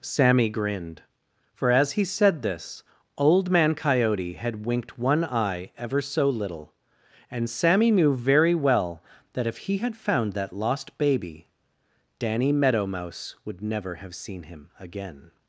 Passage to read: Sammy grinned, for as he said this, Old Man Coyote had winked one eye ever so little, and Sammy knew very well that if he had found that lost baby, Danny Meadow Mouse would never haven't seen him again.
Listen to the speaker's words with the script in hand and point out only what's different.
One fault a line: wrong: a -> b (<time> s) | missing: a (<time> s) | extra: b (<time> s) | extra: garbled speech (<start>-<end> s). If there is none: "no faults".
wrong: haven't -> have (14.0 s)